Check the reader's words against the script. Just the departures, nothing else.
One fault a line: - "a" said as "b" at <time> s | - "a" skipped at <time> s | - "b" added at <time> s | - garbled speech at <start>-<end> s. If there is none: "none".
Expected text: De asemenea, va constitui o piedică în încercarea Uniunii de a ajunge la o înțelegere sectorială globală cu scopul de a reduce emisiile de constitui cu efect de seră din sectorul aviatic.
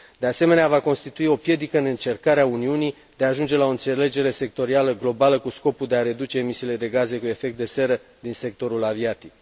- "constitui" said as "gaze" at 6.9 s